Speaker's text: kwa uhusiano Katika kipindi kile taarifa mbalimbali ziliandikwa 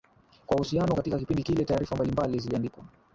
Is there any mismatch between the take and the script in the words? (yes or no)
no